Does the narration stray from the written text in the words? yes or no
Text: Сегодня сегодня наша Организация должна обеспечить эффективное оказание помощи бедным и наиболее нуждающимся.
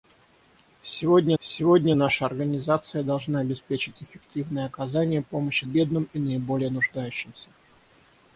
no